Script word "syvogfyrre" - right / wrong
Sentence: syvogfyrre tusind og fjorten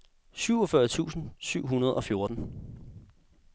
right